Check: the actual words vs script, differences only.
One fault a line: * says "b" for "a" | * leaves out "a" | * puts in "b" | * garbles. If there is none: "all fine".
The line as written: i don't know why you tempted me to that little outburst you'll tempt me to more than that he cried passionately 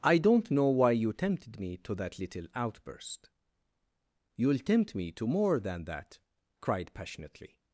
* leaves out "he"